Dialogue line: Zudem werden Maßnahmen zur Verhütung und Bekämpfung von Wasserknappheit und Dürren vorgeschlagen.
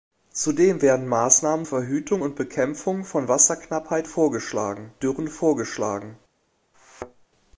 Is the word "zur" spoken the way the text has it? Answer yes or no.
no